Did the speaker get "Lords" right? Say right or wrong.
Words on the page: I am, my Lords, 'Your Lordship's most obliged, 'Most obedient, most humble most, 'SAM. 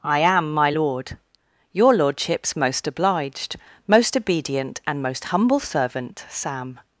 wrong